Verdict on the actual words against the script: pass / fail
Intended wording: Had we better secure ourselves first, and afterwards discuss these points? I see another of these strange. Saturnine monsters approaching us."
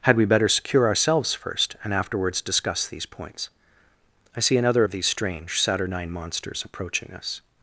pass